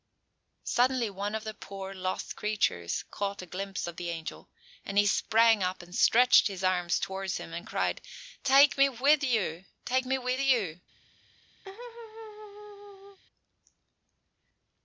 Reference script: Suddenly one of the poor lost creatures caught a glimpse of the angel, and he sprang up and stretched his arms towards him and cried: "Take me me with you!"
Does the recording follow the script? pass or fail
fail